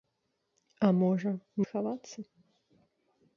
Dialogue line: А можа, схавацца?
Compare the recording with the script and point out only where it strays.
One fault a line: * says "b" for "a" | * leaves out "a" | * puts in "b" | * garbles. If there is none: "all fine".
all fine